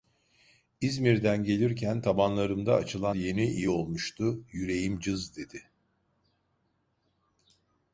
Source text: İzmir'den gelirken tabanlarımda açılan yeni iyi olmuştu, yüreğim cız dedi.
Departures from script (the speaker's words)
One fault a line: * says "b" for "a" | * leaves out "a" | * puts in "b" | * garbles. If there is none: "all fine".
all fine